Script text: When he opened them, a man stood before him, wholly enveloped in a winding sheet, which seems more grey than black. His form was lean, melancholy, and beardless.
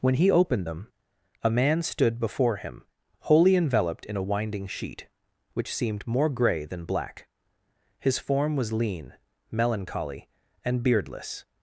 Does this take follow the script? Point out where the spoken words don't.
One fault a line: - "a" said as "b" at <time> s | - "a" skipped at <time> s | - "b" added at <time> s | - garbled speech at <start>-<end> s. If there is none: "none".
- "seems" said as "seemed" at 5.7 s